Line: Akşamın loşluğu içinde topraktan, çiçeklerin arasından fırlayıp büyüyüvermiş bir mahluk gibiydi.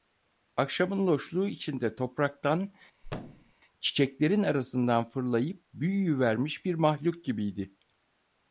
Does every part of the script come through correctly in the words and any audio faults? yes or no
no